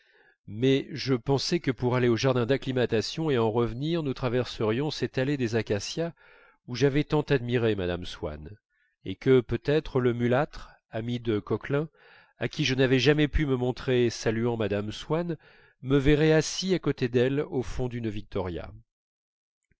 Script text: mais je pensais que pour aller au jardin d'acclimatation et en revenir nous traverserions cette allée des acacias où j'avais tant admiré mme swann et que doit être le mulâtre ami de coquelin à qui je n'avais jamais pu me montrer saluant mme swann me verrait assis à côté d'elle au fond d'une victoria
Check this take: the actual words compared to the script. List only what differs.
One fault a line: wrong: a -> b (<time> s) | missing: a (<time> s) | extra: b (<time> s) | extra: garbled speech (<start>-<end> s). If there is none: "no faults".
wrong: doit -> peut (9.4 s)